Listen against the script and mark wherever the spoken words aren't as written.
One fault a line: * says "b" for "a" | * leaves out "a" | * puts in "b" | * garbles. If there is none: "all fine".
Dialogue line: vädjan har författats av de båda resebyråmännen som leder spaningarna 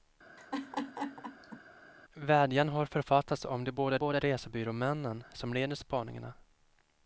* puts in "båda"